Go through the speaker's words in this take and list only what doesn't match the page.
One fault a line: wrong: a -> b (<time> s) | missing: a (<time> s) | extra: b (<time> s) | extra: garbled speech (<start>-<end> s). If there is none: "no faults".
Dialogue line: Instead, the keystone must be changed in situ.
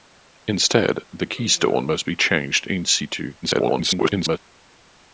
extra: garbled speech (3.4-4.4 s)